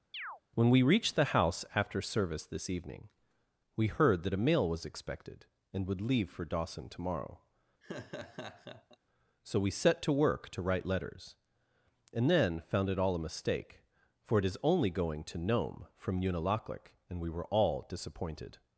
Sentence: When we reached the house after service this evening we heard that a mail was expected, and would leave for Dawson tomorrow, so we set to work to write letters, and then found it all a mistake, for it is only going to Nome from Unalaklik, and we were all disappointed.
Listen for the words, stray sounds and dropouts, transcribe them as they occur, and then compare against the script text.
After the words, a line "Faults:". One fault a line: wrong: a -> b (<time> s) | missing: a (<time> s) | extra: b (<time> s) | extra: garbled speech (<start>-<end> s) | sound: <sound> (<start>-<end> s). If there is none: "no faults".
When we reached the house after service this evening we heard that a mail was expected, and would leave for Dawson tomorrow, so we set to work to write letters, and then found it all a mistake, for it is only going to Nome from Unalaklik, and we were all disappointed.
Faults:
sound: chirp (0.1-0.4 s)
sound: laugh (7.8-9.0 s)